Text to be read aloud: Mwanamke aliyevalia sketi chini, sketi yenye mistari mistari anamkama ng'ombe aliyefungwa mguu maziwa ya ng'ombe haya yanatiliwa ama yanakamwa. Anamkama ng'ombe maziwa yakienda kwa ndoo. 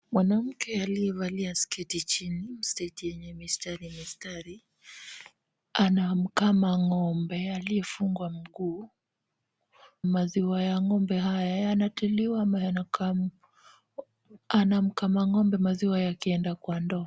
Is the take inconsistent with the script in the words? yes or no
no